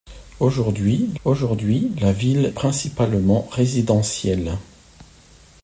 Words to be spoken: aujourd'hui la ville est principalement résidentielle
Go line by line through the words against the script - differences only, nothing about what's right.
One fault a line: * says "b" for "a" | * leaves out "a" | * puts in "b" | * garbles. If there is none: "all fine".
* puts in "aujourd'hui"
* leaves out "est"